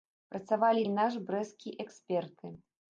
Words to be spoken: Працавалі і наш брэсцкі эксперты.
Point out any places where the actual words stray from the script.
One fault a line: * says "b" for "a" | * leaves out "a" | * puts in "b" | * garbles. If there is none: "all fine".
all fine